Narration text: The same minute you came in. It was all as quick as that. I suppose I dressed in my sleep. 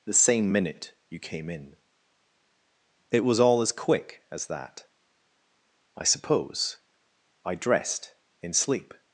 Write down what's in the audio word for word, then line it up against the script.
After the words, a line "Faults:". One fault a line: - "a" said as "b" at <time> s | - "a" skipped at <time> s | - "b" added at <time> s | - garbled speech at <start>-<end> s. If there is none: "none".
The same minute you came in. It was all as quick as that. I suppose I dressed in sleep.
Faults:
- "my" skipped at 8.5 s